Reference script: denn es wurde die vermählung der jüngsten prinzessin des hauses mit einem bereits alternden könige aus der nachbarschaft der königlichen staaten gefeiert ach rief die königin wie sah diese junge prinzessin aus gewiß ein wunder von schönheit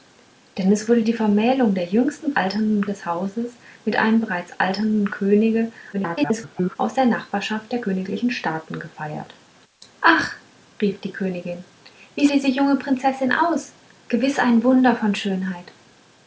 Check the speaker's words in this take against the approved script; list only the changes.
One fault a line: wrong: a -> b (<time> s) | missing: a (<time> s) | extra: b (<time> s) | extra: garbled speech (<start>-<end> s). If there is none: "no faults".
wrong: prinzessin -> alternden (2.4 s)
extra: garbled speech (5.9-6.8 s)
missing: sah (12.3 s)